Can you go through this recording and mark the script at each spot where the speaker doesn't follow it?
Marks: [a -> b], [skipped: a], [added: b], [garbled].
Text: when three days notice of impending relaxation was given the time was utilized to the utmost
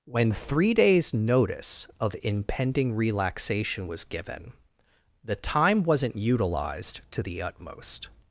when three days notice of impending relaxation was given the time [was -> wasn't] utilized to the utmost